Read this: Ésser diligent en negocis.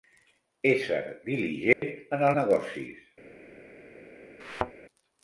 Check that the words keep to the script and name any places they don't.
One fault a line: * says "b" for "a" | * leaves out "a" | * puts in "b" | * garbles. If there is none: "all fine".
all fine